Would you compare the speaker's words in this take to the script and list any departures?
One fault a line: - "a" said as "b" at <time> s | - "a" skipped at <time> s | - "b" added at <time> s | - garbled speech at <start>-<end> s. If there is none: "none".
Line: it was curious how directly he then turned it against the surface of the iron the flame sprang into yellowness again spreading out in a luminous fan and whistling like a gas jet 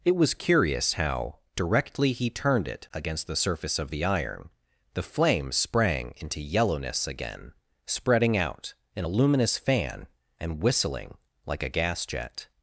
- "then" skipped at 2.3 s